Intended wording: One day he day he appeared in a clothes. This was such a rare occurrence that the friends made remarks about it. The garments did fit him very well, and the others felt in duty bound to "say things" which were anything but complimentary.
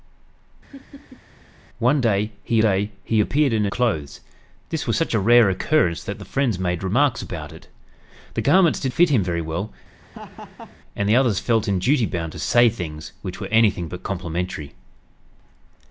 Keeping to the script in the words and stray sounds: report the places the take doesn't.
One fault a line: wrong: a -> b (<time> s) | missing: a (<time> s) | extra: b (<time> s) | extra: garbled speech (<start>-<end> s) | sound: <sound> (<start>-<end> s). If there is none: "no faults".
sound: laugh (0.7-1.2 s)
sound: laugh (10.0-10.8 s)